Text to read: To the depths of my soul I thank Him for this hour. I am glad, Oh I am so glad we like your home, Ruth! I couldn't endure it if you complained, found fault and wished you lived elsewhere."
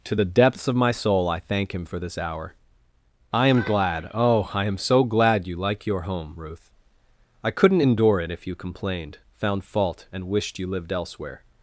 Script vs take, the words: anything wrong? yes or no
yes